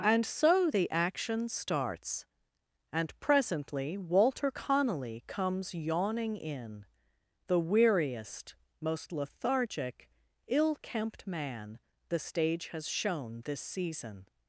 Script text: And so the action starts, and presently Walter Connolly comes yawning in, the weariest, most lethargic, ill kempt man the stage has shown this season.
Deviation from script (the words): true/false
false